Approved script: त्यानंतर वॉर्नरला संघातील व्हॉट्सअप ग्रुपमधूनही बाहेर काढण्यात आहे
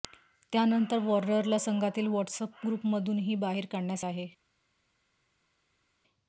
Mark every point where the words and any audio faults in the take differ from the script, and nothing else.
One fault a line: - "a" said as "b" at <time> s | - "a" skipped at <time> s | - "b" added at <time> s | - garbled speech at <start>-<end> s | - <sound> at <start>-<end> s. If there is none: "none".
none